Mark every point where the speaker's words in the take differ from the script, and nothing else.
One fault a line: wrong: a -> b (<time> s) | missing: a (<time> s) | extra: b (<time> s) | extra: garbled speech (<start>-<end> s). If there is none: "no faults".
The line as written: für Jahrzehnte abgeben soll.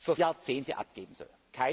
no faults